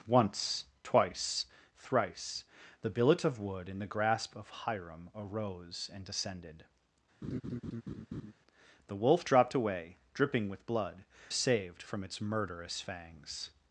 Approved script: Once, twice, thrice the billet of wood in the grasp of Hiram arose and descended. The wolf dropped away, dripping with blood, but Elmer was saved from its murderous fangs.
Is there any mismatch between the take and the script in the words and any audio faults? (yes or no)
yes